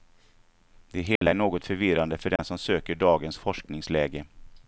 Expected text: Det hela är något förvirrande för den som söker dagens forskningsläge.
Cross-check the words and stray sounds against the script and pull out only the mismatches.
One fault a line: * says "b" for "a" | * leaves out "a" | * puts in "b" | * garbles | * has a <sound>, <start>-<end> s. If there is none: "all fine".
* has a dropout, 1.2-1.2 s
* has a dropout, 2.4-2.4 s